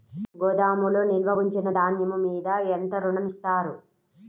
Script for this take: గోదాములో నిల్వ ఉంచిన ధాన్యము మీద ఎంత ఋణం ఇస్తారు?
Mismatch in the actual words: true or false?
false